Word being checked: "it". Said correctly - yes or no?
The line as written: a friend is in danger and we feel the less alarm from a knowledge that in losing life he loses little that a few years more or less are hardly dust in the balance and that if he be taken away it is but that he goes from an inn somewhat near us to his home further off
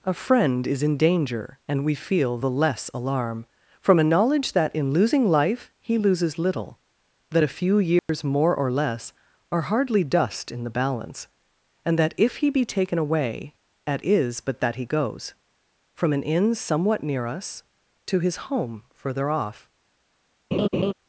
no